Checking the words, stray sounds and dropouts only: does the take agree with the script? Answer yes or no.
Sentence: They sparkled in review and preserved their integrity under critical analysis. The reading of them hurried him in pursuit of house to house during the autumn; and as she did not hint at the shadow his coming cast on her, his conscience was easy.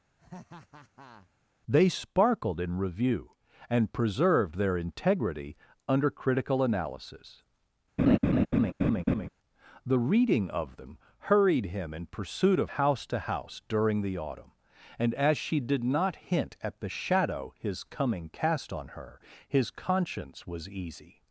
no